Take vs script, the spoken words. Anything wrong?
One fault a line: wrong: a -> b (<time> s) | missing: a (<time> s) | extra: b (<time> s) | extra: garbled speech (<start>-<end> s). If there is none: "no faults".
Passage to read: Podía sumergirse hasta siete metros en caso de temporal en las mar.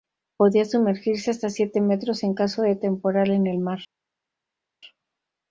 wrong: las -> el (3.5 s)